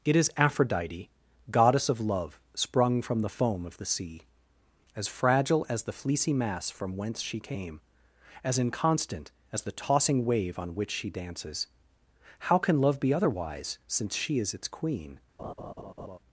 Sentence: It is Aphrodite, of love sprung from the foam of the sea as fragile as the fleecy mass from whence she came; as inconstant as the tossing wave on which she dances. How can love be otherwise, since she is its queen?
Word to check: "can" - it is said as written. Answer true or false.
true